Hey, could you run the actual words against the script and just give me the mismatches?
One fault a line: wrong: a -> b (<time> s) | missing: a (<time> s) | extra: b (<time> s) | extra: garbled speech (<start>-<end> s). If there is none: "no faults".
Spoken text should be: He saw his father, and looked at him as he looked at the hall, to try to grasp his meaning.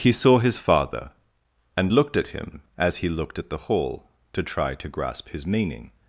no faults